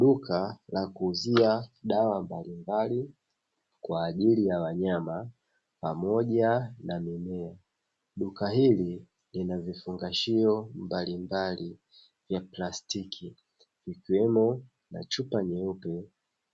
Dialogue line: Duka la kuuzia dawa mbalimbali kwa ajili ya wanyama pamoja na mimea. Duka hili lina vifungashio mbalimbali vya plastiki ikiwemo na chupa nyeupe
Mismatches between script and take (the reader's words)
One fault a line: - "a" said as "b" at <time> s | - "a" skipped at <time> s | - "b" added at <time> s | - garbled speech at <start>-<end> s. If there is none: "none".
none